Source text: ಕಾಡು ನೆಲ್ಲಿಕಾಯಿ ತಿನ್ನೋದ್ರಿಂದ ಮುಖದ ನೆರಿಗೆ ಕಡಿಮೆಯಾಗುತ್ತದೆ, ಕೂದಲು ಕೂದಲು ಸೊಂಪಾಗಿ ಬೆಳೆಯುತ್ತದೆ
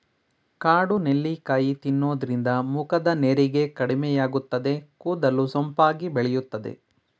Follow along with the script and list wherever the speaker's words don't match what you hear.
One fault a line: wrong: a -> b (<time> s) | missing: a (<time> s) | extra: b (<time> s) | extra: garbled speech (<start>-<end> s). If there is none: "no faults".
missing: ಕೂದಲು (5.5 s)